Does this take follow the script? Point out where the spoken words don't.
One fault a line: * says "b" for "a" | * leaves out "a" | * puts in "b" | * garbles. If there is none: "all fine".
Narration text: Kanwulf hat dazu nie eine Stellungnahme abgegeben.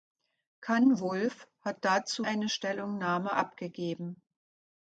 * leaves out "nie"